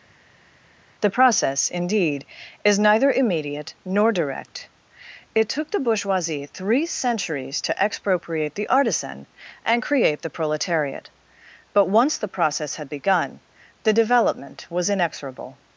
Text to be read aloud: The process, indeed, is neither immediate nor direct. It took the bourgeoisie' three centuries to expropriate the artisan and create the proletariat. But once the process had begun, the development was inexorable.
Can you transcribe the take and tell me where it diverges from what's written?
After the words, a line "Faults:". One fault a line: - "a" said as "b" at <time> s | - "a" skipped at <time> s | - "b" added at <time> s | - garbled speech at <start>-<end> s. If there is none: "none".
The process, indeed, is neither immediate nor direct. It took the bourgeoisie' three centuries to expropriate the artisan and create the proletariat. But once the process had begun, the development was inexorable.
Faults:
none